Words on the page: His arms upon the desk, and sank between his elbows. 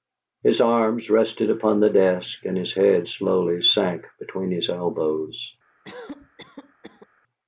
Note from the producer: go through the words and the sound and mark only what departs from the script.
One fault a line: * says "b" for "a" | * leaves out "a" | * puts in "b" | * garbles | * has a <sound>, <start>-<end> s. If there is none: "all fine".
* puts in "rested"
* puts in "his head slowly"
* has a cough, 5.8-7.1 s